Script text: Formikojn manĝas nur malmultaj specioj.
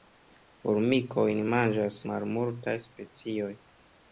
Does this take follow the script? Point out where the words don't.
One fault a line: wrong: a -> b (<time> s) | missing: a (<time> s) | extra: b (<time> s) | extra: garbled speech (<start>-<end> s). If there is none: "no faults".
missing: nur (2.0 s)